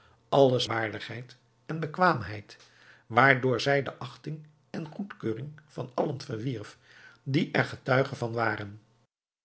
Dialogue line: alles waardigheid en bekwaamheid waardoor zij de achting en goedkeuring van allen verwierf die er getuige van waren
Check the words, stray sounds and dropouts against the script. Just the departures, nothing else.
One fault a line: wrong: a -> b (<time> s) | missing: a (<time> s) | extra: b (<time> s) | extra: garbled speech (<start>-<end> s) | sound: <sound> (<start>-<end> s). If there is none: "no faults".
no faults